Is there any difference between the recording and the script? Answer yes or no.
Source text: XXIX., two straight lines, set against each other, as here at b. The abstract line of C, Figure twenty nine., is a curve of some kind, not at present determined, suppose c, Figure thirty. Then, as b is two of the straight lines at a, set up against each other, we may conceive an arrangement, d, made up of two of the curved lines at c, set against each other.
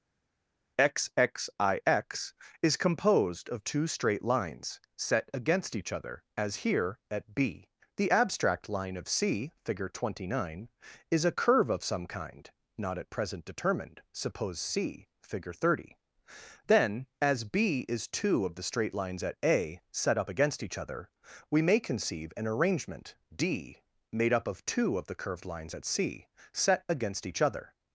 yes